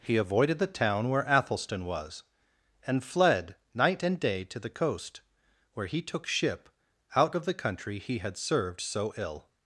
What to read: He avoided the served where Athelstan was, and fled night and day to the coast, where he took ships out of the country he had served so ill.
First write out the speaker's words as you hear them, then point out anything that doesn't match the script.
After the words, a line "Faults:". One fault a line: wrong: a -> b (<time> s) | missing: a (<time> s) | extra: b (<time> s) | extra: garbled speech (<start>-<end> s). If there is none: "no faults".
He avoided the town where Athelstan was, and fled night and day to the coast, where he took ship out of the country he had served so ill.
Faults:
wrong: served -> town (0.7 s)
wrong: ships -> ship (6.2 s)